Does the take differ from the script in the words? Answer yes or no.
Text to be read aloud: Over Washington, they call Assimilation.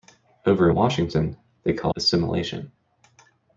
no